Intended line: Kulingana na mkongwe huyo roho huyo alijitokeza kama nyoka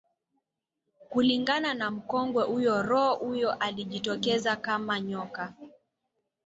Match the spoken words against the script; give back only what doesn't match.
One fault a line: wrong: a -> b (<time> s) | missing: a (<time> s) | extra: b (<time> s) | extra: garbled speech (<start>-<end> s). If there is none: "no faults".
no faults